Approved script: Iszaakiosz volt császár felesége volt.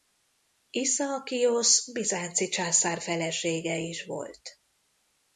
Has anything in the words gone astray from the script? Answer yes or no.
yes